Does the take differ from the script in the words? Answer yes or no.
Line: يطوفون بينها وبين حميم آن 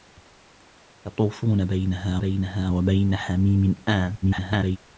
yes